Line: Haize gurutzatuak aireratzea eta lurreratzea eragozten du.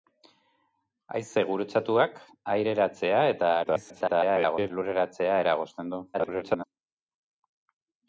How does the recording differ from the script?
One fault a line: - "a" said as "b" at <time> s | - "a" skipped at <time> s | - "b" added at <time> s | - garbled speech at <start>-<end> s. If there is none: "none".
- garbled speech at 3.6-4.7 s
- garbled speech at 6.1-6.7 s